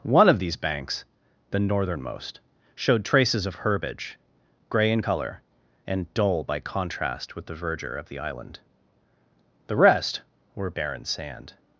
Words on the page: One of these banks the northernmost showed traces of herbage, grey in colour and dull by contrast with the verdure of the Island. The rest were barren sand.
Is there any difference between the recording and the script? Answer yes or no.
no